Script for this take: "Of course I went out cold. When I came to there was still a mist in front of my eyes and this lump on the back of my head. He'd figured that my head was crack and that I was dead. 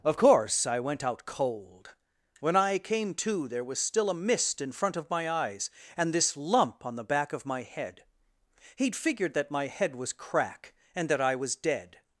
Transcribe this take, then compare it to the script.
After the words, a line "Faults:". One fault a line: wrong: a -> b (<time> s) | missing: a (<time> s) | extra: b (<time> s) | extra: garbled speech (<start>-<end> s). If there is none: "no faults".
"Of course I went out cold. When I came to there was still a mist in front of my eyes and this lump on the back of my head. He'd figured that my head was crack and that I was dead.
Faults:
no faults